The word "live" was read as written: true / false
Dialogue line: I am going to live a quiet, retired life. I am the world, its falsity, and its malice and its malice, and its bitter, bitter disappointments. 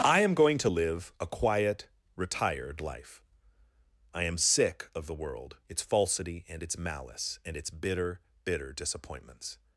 true